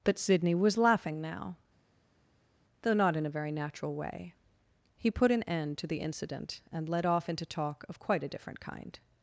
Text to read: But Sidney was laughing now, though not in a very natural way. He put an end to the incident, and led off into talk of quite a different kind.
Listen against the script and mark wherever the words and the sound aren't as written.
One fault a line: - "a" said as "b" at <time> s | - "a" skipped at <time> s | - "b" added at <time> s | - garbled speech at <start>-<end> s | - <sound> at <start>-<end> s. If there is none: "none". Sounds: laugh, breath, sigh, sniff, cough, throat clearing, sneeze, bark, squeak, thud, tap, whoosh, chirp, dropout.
none